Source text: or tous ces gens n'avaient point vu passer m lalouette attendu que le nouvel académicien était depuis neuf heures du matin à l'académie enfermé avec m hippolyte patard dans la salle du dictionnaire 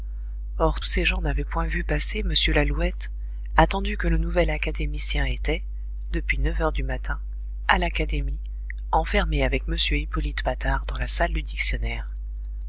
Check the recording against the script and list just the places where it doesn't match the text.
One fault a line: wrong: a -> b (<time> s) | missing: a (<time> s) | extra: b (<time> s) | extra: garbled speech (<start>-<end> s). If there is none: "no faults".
missing: tous (0.8 s)